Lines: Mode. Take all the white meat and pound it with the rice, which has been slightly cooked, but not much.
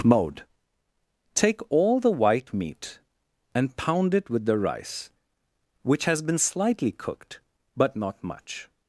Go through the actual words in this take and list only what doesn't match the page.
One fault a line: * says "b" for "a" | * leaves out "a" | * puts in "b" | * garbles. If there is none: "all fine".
all fine